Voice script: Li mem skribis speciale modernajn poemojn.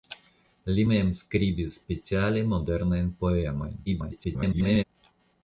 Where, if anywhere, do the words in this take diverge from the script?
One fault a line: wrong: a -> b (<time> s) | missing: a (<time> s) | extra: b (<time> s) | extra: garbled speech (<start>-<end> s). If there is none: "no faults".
extra: garbled speech (3.9-4.8 s)